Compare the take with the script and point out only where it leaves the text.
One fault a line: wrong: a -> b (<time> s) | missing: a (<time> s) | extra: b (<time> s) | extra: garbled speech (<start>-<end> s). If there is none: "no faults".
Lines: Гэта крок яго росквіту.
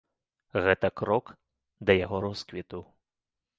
extra: да (1.9 s)